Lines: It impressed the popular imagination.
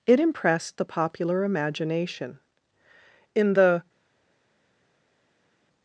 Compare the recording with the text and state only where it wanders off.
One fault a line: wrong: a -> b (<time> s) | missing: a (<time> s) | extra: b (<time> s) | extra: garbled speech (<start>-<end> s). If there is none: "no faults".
extra: In the (3.3 s)